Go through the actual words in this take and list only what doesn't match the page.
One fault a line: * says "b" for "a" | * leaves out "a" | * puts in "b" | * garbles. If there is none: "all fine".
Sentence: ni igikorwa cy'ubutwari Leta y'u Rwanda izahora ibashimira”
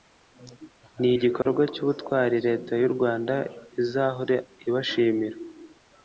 all fine